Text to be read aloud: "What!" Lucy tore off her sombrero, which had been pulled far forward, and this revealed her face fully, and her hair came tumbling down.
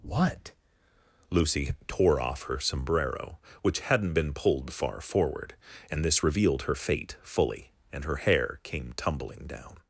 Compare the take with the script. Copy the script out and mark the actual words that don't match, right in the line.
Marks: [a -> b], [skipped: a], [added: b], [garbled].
"What!" Lucy tore off her sombrero, which [had -> hadn't] been pulled far forward, and this revealed her [face -> fate] fully, and her hair came tumbling down.